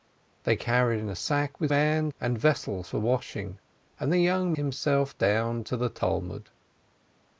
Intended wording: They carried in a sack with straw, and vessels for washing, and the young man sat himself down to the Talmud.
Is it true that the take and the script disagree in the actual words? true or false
true